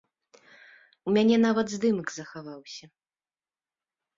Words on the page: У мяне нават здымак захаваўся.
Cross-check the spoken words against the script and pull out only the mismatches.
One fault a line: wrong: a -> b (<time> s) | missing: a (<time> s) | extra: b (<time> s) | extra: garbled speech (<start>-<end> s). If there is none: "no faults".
no faults